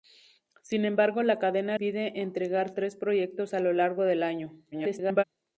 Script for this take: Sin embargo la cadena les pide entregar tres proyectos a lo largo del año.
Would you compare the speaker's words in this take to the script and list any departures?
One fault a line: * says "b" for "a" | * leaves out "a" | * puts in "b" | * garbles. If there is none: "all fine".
* leaves out "les"
* garbles